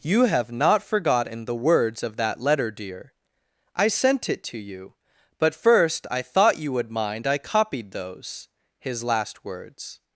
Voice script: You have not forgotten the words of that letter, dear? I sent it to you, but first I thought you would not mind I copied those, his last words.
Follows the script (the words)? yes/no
no